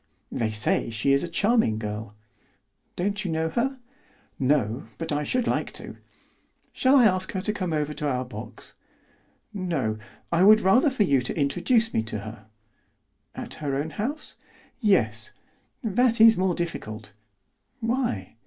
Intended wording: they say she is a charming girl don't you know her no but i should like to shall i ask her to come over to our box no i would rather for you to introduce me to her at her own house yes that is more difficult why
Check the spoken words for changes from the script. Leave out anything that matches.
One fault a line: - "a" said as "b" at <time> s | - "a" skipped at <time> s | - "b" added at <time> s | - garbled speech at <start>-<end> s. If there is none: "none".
none